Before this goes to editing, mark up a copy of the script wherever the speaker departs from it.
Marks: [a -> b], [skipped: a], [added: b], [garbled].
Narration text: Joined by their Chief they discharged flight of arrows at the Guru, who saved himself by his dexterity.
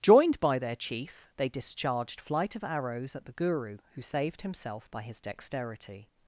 Joined by their Chief they discharged flight of arrows at the Guru, who saved himself by his dexterity.